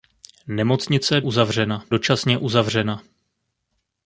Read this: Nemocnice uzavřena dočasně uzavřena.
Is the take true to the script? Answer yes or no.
yes